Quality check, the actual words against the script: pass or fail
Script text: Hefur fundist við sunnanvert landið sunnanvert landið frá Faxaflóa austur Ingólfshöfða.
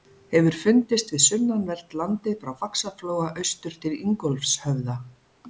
fail